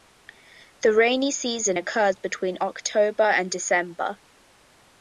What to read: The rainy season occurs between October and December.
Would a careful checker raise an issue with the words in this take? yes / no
no